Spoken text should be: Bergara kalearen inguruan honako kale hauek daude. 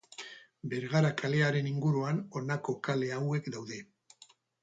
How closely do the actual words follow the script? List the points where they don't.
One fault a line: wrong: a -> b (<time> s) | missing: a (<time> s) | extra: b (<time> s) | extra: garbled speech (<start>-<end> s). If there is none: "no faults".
no faults